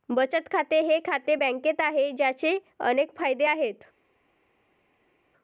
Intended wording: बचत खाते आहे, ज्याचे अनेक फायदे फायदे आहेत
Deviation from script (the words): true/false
true